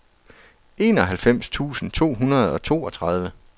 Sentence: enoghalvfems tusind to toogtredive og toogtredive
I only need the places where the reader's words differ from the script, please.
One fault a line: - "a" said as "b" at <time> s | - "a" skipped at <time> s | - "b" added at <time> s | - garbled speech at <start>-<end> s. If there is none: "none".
- "toogtredive" said as "hundrede" at 2.1 s